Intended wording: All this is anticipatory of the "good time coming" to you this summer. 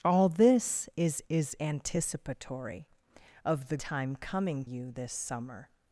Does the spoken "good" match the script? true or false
false